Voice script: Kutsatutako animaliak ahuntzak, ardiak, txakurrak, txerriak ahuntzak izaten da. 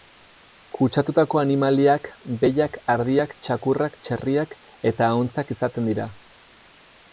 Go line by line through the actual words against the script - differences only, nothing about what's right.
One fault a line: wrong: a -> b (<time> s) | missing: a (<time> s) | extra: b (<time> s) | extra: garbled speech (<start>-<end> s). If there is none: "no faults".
wrong: ahuntzak -> behiak (2.5 s)
extra: eta (4.9 s)
wrong: da -> dira (5.9 s)